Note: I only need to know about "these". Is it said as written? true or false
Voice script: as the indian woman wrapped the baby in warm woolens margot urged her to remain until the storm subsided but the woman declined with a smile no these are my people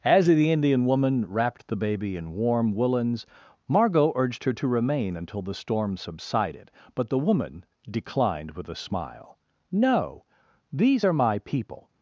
true